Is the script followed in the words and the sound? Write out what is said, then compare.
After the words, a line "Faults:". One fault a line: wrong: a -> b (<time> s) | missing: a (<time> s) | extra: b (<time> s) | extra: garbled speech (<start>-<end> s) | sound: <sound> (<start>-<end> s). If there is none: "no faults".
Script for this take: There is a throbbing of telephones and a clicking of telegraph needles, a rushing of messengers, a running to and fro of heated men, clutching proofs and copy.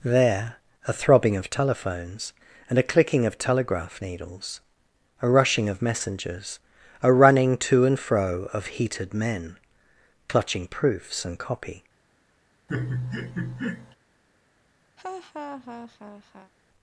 There a throbbing of telephones and a clicking of telegraph needles, a rushing of messengers, a running to and fro of heated men, clutching proofs and copy.
Faults:
missing: is (0.6 s)
sound: laugh (12.7-14.0 s)
sound: laugh (15.0-16.5 s)